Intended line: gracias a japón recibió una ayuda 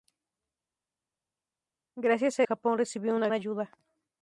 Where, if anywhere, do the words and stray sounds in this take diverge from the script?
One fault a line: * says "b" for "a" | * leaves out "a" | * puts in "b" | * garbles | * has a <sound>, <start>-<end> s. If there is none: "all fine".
all fine